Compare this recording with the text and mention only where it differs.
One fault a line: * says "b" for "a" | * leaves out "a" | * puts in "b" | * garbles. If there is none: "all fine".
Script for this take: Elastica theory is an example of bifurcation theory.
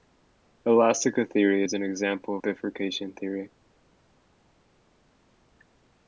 * leaves out "of"